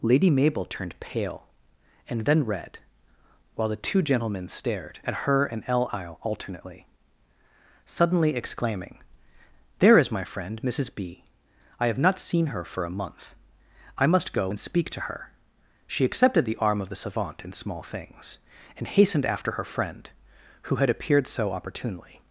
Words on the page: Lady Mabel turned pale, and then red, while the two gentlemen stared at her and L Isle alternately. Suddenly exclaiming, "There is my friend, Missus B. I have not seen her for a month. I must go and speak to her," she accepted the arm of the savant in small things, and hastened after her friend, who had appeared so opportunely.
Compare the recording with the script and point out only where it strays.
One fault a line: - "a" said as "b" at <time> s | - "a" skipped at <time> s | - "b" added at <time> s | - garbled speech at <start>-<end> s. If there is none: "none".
none